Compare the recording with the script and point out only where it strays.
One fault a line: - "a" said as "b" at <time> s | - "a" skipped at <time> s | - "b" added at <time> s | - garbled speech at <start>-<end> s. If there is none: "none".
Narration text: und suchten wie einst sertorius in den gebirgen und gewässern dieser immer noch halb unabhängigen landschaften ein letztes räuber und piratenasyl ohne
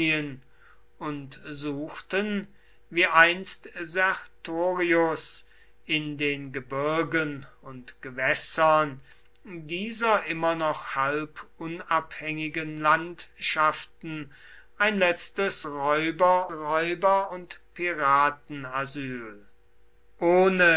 - "räuber" added at 16.5 s